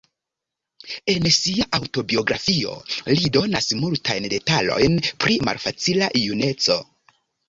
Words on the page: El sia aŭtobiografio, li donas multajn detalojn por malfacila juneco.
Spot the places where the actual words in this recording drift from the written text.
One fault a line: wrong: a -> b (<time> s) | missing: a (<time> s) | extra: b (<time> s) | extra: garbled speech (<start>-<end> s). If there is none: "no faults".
wrong: El -> En (1.1 s)
wrong: por -> pri (5.2 s)